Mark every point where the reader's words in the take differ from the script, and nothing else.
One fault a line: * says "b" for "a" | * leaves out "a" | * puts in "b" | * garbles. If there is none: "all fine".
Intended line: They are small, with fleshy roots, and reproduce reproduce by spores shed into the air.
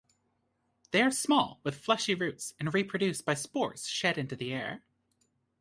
* leaves out "reproduce"